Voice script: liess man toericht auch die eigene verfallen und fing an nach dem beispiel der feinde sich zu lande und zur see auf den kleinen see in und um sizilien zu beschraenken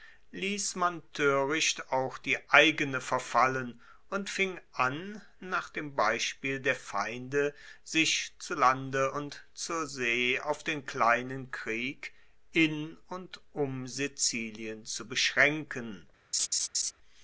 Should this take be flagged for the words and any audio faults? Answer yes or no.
yes